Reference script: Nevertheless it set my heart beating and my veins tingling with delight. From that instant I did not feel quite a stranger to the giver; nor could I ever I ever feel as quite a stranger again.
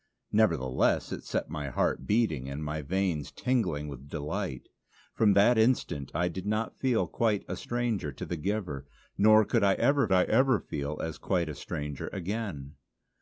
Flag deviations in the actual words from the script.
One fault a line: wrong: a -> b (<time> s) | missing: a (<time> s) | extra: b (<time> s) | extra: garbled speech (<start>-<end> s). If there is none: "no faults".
no faults